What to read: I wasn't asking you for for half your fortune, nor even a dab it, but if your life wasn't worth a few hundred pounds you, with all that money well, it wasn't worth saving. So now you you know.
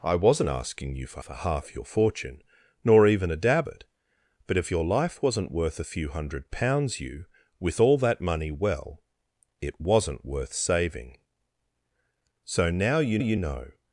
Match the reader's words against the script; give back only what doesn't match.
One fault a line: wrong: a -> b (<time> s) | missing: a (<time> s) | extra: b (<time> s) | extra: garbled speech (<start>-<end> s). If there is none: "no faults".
no faults